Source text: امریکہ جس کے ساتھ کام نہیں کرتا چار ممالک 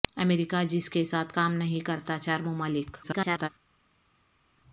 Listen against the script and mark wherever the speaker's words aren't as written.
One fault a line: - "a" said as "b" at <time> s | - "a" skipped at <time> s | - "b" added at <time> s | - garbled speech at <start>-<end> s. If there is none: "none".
- garbled speech at 3.0-3.5 s